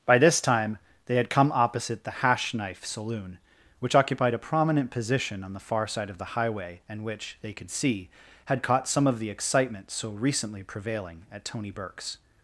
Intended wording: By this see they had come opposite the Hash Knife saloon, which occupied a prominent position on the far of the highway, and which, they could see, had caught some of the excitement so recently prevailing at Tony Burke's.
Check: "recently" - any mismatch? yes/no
no